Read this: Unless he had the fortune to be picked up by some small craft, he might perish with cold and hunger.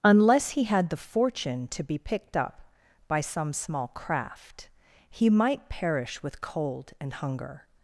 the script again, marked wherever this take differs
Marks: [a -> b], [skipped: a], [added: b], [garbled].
Unless he had the fortune to be picked up by some small craft, he might perish with cold and hunger.